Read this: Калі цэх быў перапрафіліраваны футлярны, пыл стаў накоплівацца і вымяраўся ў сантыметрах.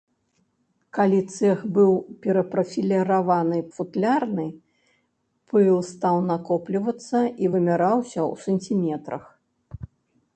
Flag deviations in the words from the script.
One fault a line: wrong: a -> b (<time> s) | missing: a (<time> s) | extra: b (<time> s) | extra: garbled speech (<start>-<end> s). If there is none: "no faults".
no faults